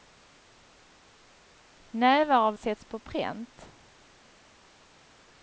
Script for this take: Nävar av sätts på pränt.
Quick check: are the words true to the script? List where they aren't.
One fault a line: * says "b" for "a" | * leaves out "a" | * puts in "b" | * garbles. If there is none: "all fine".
all fine